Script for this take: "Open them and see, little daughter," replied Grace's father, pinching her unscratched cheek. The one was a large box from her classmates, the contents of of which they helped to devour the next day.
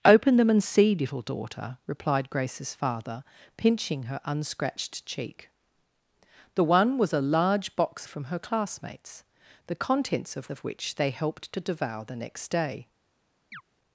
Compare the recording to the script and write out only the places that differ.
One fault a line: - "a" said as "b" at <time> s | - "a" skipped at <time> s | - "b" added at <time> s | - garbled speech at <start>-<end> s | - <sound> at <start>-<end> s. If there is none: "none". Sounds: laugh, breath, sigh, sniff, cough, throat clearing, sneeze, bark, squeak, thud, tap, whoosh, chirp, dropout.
- chirp at 13.5-13.6 s